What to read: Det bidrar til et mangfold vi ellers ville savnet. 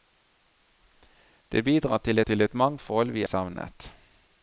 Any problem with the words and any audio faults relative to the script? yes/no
yes